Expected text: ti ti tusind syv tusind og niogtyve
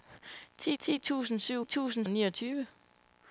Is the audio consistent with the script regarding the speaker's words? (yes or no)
yes